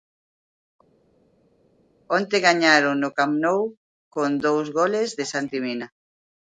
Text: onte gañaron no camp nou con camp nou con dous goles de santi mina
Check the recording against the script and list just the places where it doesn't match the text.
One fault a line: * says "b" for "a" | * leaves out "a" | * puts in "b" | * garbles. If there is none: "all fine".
* leaves out "camp nou con"